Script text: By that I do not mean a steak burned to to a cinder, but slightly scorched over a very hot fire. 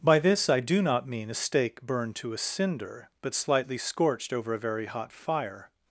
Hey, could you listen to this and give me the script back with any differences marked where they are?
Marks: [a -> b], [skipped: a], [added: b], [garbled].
By [that -> this] I do not mean a steak burned to [skipped: to] a cinder, but slightly scorched over a very hot fire.